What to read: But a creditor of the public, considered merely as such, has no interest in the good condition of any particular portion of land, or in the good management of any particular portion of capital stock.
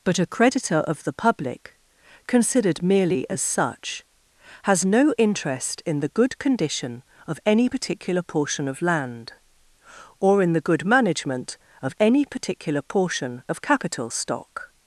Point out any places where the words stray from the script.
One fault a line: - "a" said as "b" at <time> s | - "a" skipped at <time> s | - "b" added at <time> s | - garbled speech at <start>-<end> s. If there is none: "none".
none